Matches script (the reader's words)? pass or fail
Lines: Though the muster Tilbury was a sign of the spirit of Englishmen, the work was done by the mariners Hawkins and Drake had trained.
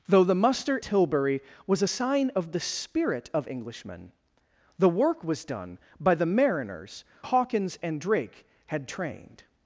pass